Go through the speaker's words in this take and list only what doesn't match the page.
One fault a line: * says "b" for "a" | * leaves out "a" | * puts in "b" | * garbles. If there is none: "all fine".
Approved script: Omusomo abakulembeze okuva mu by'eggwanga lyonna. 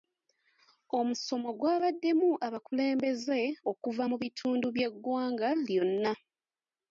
* puts in "gwabaddemu"
* puts in "bitundu"